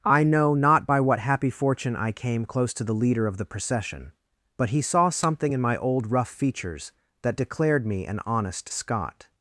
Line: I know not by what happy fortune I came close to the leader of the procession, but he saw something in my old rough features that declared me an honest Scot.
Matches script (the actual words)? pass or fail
pass